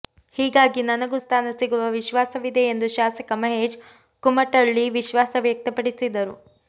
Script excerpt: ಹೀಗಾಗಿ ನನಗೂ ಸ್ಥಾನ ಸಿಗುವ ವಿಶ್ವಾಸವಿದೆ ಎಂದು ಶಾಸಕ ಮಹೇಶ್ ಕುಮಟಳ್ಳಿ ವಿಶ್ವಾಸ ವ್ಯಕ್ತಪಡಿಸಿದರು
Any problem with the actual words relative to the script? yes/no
no